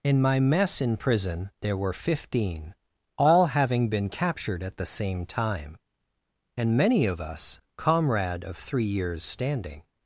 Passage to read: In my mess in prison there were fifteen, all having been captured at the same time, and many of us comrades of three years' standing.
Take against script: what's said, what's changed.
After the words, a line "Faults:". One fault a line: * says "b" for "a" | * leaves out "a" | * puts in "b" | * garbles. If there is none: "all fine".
In my mess in prison there were fifteen, all having been captured at the same time, and many of us comrade of three years' standing.
Faults:
* says "comrade" for "comrades"